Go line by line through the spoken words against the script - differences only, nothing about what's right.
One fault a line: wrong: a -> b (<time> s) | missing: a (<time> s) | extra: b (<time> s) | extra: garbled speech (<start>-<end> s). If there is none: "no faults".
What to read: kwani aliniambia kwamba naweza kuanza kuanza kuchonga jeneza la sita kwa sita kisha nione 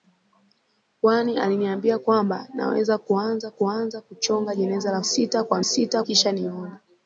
no faults